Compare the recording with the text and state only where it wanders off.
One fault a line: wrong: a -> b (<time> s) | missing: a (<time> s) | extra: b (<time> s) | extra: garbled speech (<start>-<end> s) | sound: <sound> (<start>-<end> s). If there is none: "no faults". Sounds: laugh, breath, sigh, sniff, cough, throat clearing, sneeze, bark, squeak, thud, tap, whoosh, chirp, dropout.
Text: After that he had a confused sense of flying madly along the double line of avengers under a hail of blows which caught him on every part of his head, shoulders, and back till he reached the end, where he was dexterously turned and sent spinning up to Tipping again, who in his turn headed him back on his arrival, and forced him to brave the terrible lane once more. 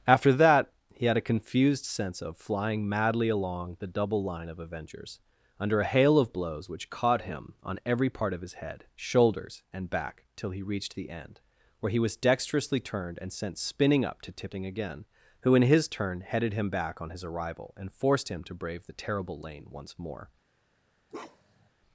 sound: bark (21.1-21.7 s)